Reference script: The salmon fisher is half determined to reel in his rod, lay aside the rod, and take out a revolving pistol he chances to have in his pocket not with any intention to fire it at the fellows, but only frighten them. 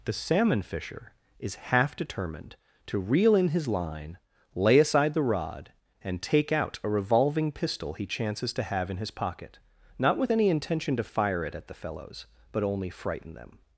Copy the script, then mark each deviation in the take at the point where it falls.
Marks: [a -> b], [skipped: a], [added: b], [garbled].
The salmon fisher is half determined to reel in his [rod, -> line] lay aside the rod, and take out a revolving pistol he chances to have in his pocket not with any intention to fire it at the fellows, but only frighten them.